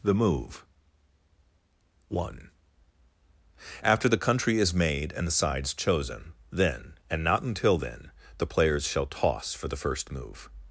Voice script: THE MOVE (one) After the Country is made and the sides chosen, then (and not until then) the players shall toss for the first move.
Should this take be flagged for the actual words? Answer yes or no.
no